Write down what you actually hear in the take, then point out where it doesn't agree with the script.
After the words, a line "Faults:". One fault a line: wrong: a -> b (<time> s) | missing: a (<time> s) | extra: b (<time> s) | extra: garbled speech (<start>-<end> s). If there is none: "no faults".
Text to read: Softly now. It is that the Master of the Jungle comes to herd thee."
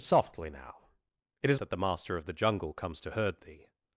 Softly now. It is that the Master of the Jungle comes to herd thee."
Faults:
no faults